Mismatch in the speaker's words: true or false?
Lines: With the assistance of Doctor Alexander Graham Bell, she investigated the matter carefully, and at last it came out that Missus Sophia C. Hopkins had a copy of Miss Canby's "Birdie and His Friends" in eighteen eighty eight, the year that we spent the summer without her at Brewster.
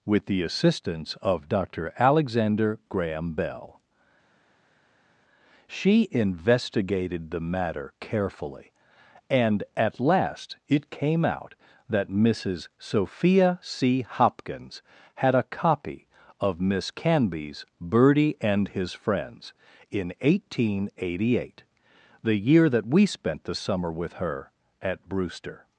true